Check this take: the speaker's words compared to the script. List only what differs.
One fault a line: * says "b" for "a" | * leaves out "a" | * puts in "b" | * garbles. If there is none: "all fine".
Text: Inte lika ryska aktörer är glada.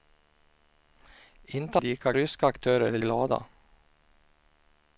all fine